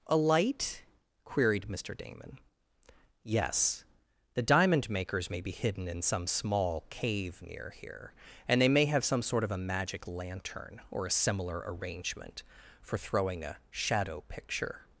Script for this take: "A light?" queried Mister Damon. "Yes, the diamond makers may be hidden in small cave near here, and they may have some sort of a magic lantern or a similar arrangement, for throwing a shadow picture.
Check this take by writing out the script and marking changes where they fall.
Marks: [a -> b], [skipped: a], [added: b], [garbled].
"A light?" queried Mister Damon. "Yes, the diamond makers may be hidden in [added: some] small cave near here, and they may have some sort of a magic lantern or a similar arrangement, for throwing a shadow picture.